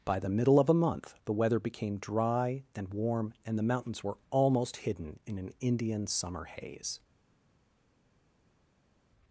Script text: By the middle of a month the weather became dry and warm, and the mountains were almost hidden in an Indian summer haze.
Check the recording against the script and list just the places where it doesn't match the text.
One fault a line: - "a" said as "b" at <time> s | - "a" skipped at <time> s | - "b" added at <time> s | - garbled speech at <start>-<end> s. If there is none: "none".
none